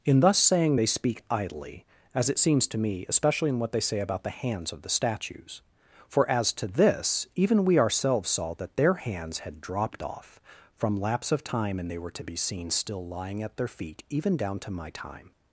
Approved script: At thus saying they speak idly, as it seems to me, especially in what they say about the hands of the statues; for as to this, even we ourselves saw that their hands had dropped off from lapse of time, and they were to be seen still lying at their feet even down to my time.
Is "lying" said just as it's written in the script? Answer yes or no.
yes